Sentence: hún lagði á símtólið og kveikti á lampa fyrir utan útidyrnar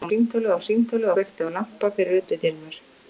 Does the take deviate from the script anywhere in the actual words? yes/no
yes